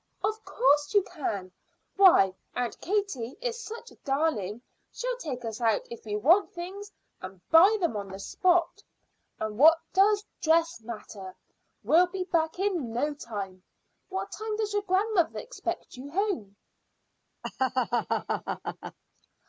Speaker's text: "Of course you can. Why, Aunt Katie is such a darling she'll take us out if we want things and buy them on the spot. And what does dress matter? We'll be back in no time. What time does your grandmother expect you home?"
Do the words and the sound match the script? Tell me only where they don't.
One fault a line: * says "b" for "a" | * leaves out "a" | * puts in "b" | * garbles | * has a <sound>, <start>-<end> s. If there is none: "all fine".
* has a laugh, 17.4-19.0 s